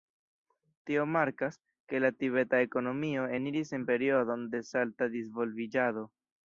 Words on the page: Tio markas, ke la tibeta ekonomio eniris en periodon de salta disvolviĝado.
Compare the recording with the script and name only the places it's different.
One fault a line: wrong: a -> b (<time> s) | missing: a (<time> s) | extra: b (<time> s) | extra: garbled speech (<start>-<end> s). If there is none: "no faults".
no faults